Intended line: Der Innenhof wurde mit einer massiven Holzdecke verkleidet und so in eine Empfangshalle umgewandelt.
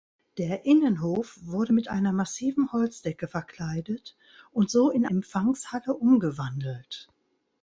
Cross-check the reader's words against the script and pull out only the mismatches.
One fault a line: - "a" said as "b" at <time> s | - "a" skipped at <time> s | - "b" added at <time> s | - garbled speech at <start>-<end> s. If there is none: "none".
- "eine" skipped at 5.1 s